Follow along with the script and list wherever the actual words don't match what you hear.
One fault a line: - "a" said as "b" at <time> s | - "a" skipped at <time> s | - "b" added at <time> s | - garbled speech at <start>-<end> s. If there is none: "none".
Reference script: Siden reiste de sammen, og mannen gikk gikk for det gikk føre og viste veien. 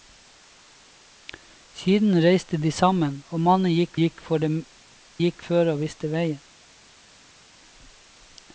none